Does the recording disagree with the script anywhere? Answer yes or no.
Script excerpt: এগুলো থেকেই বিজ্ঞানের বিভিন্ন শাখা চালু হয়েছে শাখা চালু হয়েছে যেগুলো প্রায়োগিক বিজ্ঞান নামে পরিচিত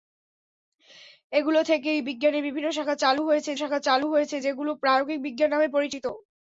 no